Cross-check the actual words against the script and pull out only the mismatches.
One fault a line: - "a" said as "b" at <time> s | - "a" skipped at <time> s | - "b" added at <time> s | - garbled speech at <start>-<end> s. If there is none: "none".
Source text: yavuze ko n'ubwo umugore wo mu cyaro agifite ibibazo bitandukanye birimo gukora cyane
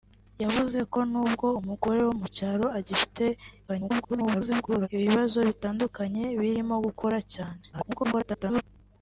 - garbled speech at 3.7-4.9 s
- garbled speech at 7.7-8.6 s